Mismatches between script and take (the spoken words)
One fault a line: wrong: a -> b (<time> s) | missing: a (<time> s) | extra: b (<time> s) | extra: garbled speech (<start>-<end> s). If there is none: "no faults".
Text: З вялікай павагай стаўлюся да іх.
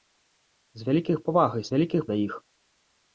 wrong: стаўлюся -> вялікай (1.7 s)